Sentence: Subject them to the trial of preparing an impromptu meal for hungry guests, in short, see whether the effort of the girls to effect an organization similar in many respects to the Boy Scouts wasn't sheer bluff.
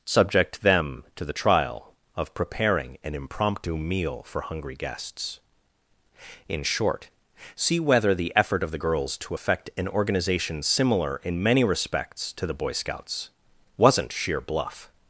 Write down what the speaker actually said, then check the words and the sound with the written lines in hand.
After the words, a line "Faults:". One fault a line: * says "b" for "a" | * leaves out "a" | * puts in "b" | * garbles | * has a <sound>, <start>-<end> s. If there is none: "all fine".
Subject them to the trial of preparing an impromptu meal for hungry guests, in short, see whether the effort of the girls to effect an organization similar in many respects to the Boy Scouts wasn't sheer bluff.
Faults:
all fine